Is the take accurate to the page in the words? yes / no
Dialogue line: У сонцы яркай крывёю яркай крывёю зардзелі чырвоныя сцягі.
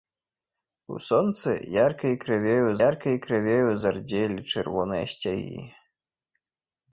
yes